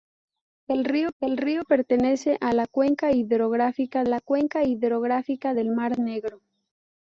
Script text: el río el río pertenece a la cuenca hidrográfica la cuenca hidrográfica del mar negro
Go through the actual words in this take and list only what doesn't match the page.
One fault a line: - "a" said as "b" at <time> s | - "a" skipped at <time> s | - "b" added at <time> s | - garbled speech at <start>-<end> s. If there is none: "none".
none